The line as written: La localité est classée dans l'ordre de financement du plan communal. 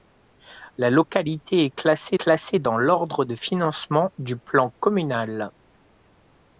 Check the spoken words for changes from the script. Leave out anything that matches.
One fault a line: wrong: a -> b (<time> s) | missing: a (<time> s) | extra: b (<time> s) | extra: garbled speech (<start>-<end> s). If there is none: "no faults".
extra: classée (2.2 s)